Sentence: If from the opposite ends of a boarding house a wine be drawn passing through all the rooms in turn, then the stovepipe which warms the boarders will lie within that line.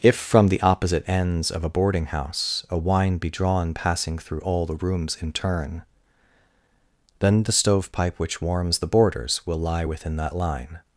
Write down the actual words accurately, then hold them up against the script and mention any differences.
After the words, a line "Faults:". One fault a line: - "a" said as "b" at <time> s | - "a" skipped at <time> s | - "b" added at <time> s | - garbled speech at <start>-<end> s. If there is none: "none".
If from the opposite ends of a boarding house a wine be drawn passing through all the rooms in turn, then the stovepipe which warms the boarders will lie within that line.
Faults:
none